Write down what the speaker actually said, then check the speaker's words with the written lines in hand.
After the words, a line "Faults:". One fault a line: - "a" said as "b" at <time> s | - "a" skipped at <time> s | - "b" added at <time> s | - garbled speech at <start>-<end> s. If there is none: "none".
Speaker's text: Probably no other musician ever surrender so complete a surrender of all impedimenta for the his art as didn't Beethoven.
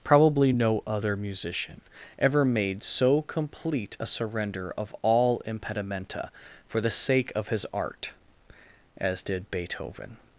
Probably no other musician ever made so complete a surrender of all impedimenta for the sake of his art as did Beethoven.
Faults:
- "surrender" said as "made" at 2.4 s
- "sake of" added at 6.9 s
- "didn't" said as "did" at 9.2 s